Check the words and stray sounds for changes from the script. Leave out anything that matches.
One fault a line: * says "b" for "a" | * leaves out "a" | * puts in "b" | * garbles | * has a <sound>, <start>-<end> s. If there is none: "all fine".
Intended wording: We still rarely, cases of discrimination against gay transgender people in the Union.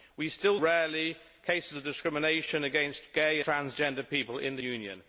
all fine